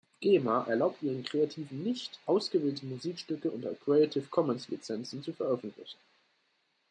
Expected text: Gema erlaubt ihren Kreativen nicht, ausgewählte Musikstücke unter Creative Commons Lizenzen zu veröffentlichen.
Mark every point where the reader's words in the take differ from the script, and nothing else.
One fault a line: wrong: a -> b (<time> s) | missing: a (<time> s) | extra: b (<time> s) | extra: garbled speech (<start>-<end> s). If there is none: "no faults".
no faults